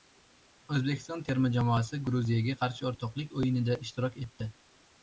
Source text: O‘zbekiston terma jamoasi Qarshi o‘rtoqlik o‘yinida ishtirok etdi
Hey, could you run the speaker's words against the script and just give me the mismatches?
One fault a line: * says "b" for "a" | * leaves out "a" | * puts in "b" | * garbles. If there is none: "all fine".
* puts in "Gruziyaga"